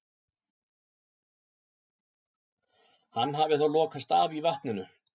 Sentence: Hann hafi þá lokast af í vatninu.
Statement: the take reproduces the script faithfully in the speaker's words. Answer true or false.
true